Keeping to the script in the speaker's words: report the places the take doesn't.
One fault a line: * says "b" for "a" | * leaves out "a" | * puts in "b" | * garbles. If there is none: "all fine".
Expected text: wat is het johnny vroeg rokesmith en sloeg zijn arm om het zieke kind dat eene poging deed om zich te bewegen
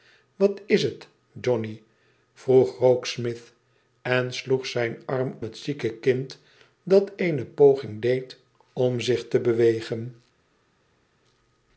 * leaves out "om"